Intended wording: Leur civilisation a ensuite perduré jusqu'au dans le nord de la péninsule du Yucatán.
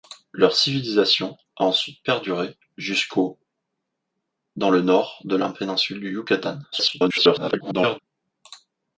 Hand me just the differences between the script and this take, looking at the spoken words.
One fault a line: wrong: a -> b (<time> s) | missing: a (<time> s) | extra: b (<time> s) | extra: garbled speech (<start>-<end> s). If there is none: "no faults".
extra: garbled speech (6.7-8.0 s)